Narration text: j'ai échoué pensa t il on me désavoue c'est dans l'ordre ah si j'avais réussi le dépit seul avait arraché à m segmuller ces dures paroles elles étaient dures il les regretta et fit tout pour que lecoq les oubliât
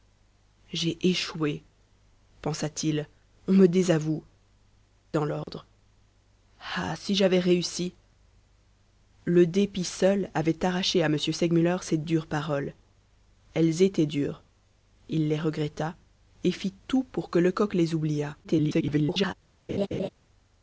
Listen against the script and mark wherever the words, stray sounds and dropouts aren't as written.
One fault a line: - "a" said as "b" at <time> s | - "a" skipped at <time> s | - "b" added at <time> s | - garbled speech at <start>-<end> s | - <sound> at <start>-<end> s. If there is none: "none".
- "c'est" skipped at 4.2 s
- dropout at 5.4-5.5 s
- garbled speech at 18.4-19.3 s
- laugh at 19.7-20.1 s